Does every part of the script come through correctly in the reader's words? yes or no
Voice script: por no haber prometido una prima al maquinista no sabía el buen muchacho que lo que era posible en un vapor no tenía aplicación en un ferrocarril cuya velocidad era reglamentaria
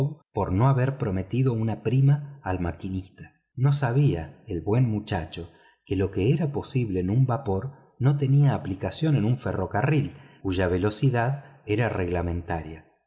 yes